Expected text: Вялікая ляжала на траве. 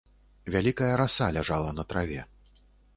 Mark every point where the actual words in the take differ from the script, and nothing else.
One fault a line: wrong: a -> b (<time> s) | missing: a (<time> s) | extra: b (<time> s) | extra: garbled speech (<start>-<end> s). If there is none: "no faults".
extra: раса (1.0 s)